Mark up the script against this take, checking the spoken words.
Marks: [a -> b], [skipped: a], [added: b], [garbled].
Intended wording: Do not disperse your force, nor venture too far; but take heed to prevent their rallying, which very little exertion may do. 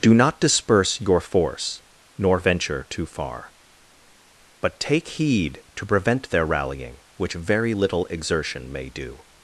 Do not disperse your force, nor venture too far; but take heed to prevent their rallying, which very little exertion may do.